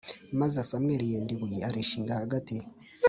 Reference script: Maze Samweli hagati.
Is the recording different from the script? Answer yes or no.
yes